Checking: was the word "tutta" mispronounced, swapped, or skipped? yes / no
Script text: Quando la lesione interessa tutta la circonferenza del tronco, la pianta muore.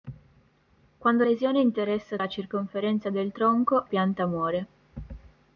yes